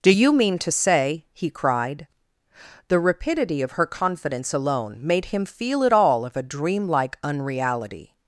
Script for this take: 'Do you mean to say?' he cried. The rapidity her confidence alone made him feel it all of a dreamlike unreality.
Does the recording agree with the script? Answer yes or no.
no